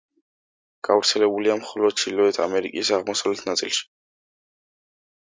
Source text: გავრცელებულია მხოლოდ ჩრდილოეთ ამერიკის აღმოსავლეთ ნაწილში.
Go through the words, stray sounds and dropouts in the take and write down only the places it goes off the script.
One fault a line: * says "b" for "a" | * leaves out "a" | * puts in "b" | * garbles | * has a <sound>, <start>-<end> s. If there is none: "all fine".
all fine